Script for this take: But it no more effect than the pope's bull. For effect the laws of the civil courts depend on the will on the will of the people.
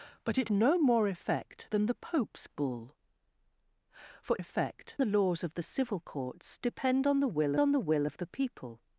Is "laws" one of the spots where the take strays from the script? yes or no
no